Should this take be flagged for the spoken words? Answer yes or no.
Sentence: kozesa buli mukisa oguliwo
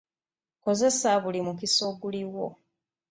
no